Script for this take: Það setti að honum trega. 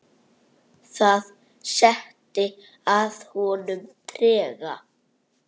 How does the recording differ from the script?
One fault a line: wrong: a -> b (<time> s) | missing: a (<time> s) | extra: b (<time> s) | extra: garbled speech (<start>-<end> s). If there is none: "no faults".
no faults